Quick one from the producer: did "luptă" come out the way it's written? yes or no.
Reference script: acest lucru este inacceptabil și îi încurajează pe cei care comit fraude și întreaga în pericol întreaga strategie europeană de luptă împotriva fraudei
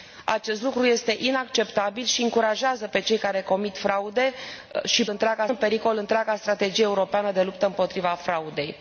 yes